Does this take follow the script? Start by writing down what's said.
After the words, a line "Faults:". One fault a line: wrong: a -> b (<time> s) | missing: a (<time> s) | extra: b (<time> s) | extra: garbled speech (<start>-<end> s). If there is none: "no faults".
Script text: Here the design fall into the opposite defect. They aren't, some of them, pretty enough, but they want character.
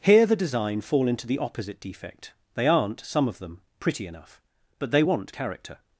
Here the design fall into the opposite defect. They aren't, some of them, pretty enough, but they want character.
Faults:
no faults